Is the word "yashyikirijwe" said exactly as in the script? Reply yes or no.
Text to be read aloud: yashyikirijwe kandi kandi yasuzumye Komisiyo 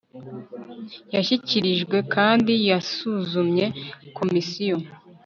yes